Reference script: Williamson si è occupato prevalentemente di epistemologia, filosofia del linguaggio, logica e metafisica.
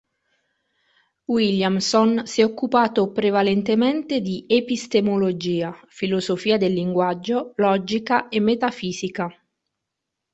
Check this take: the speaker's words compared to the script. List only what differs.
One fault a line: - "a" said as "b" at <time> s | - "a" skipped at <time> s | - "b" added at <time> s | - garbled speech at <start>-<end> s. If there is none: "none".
none